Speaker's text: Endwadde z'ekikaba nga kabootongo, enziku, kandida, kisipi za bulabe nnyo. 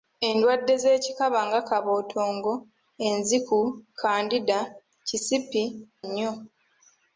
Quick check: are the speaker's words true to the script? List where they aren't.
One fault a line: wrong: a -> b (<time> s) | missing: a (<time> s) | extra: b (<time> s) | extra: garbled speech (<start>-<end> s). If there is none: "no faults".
missing: za bulabe (5.6 s)